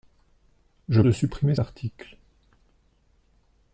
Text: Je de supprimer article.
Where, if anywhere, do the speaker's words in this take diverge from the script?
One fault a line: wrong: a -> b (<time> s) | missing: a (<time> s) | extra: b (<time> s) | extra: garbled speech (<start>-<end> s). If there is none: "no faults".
no faults